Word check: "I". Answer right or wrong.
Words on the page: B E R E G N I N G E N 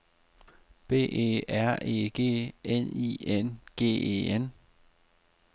right